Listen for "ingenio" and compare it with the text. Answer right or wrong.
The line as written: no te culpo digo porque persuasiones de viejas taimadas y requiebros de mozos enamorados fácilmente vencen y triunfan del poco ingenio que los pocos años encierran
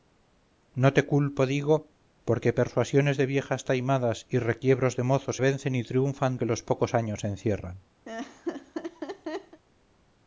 wrong